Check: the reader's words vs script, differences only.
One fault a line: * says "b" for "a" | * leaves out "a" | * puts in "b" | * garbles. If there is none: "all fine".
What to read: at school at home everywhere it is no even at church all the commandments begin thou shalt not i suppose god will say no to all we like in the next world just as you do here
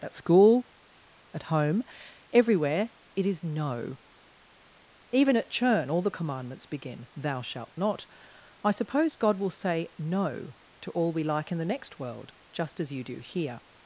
* says "churn" for "church"